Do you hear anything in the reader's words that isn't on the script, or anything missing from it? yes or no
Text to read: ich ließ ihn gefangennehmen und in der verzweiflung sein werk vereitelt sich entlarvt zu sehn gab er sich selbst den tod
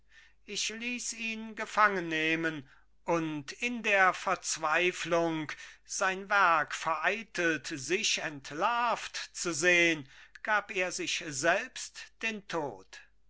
no